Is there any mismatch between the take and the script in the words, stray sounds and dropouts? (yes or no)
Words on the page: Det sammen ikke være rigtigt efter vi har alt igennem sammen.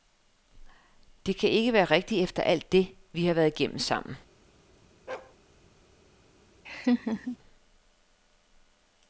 yes